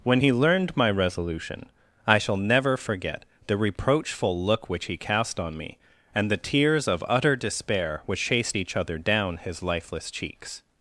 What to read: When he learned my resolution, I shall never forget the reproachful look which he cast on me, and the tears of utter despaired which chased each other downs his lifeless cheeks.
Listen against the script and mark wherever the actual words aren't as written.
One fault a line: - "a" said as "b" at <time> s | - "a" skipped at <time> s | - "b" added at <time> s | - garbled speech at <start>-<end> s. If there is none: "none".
- "despaired" said as "despair" at 7.3 s
- "downs" said as "down" at 9.0 s